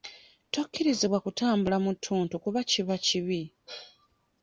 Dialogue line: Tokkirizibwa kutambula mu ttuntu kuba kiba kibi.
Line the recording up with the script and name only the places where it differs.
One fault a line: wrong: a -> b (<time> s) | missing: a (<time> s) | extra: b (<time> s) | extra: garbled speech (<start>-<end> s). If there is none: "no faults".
no faults